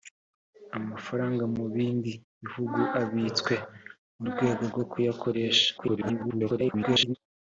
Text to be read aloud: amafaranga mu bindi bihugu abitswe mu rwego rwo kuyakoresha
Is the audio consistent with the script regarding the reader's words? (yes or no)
no